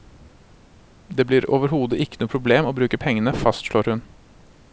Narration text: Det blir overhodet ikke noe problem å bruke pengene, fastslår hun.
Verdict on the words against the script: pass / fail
pass